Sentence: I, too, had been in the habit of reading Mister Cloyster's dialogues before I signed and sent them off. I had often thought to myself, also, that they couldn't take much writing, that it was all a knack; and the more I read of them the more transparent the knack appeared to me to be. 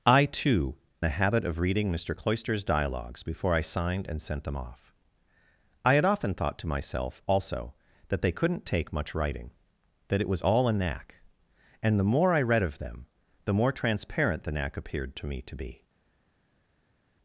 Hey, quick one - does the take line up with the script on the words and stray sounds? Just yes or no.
no